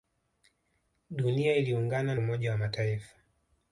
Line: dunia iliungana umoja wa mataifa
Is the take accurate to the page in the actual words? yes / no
yes